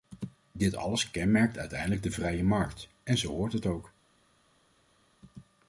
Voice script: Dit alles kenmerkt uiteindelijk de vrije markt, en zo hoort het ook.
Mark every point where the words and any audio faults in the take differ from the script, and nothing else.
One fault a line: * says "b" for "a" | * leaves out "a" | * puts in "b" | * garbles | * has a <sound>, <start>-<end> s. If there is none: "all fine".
all fine